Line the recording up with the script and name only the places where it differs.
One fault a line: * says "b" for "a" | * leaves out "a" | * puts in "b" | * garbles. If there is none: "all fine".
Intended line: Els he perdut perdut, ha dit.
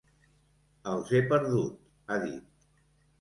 * leaves out "perdut"